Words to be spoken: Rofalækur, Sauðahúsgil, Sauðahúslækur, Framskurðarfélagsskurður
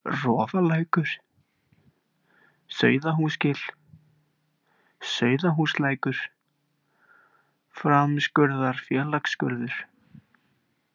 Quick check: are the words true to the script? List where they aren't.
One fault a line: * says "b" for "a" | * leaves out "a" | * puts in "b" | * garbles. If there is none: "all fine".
all fine